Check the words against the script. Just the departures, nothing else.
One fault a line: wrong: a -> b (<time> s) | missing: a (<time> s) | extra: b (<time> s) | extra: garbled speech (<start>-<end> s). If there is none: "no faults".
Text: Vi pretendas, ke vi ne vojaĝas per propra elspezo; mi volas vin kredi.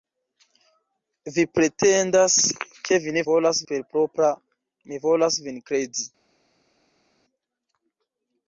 wrong: vojaĝas -> volas (3.3 s)
missing: elspezo (4.3 s)